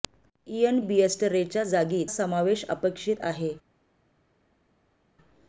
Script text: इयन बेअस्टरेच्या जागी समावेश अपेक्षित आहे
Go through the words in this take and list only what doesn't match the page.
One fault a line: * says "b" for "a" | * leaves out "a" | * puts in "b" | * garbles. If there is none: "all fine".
all fine